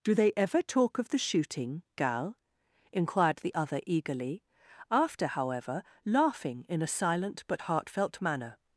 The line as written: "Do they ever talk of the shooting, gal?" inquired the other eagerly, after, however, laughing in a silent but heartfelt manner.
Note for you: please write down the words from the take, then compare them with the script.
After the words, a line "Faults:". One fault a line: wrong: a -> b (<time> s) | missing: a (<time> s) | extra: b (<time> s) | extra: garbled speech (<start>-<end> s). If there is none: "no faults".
"Do they ever talk of the shooting, gal?" inquired the other eagerly, after, however, laughing in a silent but heartfelt manner.
Faults:
no faults